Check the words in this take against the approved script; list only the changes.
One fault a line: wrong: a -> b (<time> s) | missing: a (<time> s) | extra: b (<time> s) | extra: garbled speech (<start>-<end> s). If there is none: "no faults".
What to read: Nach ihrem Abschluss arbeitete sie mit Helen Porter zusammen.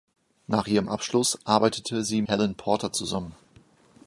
missing: mit (2.2 s)